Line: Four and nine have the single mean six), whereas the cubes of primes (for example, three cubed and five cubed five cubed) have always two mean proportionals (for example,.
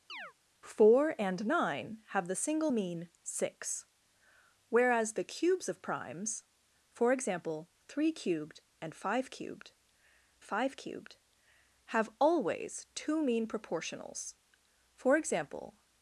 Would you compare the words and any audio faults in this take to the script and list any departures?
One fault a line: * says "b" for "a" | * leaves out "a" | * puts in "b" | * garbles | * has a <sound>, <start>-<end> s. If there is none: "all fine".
* has a chirp, 0.1-0.3 s